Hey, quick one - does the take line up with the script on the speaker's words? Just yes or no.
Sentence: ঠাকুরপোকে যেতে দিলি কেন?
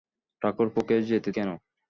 no